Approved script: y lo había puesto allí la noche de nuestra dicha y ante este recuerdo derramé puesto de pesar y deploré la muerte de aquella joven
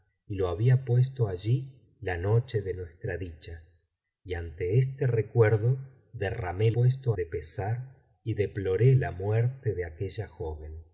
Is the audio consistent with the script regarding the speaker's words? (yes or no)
yes